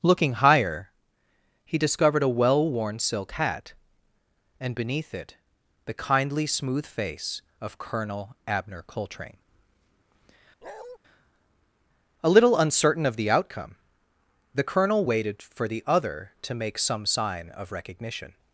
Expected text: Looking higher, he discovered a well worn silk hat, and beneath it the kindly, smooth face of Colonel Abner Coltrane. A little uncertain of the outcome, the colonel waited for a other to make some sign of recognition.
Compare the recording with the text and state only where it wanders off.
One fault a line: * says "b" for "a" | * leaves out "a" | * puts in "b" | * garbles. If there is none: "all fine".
* says "the" for "a"